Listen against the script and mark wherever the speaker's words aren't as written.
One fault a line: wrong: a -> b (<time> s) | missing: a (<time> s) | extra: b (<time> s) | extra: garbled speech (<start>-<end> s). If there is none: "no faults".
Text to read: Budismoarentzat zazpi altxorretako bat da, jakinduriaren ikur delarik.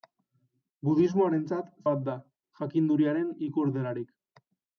missing: zazpi altxorretako (1.7 s)